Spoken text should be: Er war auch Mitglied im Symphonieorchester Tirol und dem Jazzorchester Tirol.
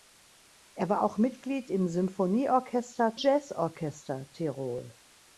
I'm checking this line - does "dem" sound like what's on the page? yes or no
no